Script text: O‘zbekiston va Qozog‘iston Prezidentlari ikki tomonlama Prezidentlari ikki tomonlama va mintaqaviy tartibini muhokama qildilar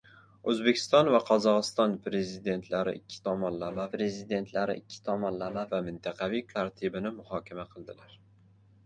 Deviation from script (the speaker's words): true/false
false